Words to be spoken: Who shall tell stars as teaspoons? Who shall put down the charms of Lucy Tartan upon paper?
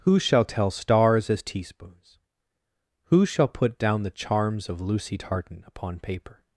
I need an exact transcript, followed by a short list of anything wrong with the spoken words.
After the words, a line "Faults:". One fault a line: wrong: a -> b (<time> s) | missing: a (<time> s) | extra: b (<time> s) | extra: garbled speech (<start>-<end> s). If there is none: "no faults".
Who shall tell stars as teaspoons? Who shall put down the charms of Lucy Tartan upon paper?
Faults:
no faults